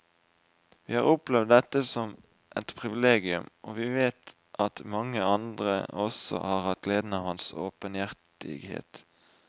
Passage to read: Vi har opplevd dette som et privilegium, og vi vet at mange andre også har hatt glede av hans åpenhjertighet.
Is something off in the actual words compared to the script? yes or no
no